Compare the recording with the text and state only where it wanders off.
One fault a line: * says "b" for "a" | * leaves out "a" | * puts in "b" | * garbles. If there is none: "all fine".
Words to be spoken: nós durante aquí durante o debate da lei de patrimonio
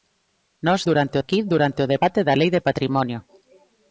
all fine